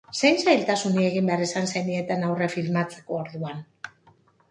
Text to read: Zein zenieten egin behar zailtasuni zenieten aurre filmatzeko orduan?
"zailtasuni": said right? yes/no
no